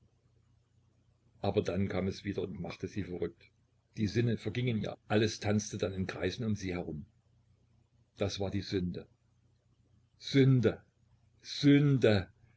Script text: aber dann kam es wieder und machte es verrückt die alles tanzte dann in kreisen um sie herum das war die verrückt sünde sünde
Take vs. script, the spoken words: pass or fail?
fail